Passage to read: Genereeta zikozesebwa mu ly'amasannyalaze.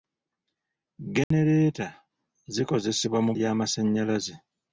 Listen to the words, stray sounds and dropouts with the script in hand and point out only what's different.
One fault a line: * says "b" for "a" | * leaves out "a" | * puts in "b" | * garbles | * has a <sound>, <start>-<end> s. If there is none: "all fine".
* has a dropout, 1.2-1.3 s